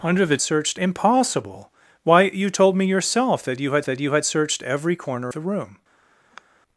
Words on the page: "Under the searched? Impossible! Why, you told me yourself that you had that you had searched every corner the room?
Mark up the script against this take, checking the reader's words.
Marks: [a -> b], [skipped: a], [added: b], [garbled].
"Under the searched? Impossible! Why, you told me yourself that you had that you had searched every corner the room?